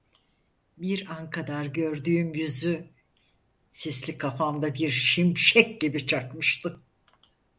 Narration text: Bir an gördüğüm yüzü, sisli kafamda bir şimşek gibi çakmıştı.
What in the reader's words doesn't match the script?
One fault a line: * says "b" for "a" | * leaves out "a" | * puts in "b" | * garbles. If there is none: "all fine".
* puts in "kadar"